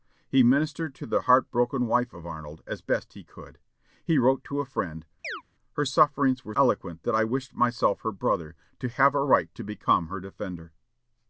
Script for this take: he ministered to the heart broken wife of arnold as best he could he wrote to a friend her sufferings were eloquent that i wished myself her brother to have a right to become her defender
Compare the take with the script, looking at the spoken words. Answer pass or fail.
pass